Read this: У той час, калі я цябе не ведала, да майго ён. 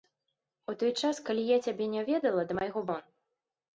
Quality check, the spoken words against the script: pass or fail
pass